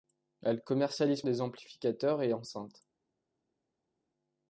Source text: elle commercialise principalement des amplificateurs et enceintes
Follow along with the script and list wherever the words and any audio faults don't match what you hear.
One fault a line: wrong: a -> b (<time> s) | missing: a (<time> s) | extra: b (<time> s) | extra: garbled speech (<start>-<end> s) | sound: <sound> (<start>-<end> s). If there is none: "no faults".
missing: principalement (1.2 s)